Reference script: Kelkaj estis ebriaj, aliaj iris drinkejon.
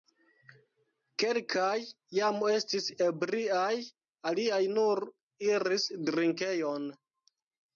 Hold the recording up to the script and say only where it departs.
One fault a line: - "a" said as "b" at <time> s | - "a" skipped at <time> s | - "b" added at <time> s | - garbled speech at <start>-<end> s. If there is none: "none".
- "jam" added at 2.2 s
- "nur" added at 4.8 s